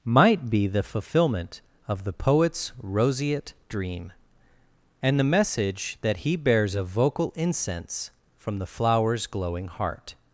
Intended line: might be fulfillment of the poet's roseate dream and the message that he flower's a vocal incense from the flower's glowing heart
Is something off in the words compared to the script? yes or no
yes